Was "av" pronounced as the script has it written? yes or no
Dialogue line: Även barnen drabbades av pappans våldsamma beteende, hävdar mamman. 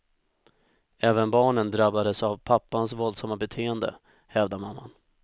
yes